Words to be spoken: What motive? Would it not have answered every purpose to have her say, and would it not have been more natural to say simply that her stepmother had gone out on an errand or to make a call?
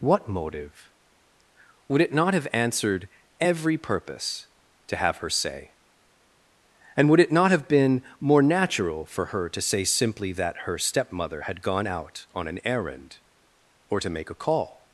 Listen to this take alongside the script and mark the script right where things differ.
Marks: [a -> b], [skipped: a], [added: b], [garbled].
What motive? Would it not have answered every purpose to have her say, and would it not have been more natural [added: for her] to say simply that her stepmother had gone out on an errand or to make a call?